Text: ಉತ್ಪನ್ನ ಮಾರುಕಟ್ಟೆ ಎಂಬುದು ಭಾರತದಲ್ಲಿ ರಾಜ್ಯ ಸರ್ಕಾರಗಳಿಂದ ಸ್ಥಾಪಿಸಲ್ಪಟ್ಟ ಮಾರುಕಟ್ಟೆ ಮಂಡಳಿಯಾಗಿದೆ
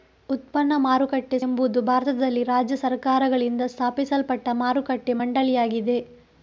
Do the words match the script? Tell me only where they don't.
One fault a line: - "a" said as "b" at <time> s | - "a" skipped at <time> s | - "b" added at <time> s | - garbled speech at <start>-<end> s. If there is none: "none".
none